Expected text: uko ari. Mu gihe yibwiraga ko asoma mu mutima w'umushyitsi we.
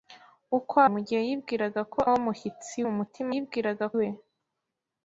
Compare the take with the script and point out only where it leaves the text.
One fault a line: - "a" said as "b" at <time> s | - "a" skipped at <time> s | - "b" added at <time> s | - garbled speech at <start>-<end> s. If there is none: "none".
- "ari" skipped at 0.8 s
- "asoma" said as "w'umushyitsi" at 2.1 s
- "w'umushyitsi" said as "yibwiraga" at 3.3 s